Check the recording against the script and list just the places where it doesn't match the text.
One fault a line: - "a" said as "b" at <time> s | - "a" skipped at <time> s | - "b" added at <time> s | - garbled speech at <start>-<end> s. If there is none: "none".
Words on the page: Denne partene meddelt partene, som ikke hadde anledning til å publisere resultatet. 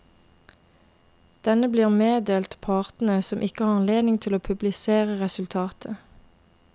- "partene" said as "blir" at 1.7 s
- "hadde" said as "har" at 3.6 s